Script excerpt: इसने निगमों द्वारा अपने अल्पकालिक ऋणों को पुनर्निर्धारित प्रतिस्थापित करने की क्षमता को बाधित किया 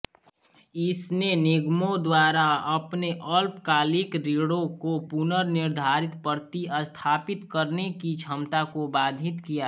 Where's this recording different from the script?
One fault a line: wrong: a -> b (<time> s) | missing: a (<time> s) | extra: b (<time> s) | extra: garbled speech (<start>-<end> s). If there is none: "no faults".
no faults